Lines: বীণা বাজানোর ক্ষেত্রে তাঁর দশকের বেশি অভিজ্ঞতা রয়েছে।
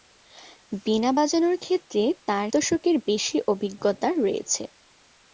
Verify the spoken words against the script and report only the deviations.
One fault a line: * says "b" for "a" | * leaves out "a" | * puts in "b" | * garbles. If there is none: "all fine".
all fine